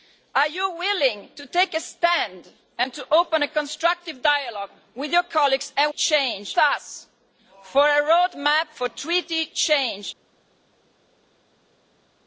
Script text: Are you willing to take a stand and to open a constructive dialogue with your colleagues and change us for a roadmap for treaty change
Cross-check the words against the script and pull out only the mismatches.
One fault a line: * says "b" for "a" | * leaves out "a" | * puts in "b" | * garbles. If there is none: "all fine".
all fine